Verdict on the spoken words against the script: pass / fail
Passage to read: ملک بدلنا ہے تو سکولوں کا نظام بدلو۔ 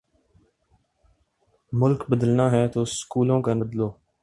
fail